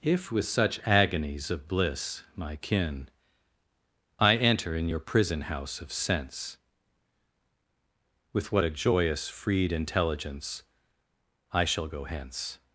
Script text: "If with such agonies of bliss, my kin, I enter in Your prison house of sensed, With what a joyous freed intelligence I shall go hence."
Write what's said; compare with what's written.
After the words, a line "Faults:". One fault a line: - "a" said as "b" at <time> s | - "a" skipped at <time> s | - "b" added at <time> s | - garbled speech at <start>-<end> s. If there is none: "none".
"If with such agonies of bliss, my kin, I enter in Your prison house of sense, With what a joyous freed intelligence I shall go hence."
Faults:
- "sensed" said as "sense" at 5.9 s